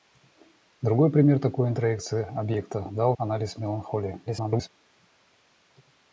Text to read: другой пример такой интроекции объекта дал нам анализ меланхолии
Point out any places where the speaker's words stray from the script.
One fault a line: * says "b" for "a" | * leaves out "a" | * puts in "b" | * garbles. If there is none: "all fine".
* leaves out "нам"
* garbles